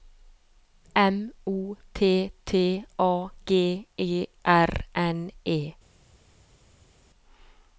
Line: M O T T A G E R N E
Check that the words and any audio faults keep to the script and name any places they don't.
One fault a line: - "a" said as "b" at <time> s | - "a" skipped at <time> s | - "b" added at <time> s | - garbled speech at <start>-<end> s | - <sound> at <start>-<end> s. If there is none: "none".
none